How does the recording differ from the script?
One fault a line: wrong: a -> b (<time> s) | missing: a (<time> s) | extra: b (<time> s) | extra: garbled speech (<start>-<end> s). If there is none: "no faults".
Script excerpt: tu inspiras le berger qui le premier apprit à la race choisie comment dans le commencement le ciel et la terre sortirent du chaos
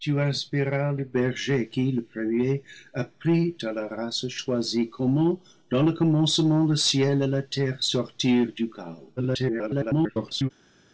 extra: garbled speech (9.2-10.5 s)